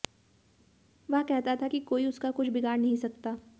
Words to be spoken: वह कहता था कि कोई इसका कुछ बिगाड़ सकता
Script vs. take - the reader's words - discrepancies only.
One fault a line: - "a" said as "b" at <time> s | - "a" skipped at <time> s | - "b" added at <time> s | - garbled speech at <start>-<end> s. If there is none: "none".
- "इसका" said as "उसका" at 2.1 s
- "नहीं" added at 2.8 s